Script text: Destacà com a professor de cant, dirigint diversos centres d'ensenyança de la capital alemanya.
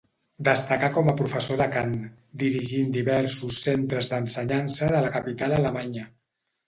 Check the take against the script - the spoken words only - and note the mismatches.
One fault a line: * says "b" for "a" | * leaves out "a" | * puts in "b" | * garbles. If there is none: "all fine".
all fine